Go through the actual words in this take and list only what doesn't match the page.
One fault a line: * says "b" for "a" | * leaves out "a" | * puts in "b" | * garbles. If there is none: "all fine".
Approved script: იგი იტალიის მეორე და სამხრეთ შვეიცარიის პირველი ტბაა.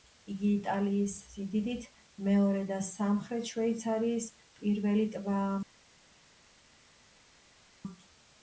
* puts in "სიდიდით"